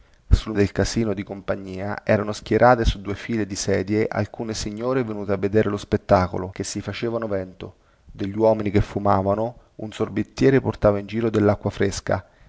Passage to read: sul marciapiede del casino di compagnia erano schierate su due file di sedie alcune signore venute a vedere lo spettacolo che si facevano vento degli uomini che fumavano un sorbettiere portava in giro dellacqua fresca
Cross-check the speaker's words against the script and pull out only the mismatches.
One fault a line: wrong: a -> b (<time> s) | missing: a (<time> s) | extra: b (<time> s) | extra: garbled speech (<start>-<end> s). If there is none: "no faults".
missing: marciapiede (0.6 s)